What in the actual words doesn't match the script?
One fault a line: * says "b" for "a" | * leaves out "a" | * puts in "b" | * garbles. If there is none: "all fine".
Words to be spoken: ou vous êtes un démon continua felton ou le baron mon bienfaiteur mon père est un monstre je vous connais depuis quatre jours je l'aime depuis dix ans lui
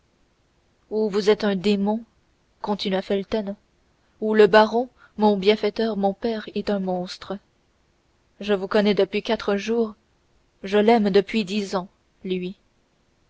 all fine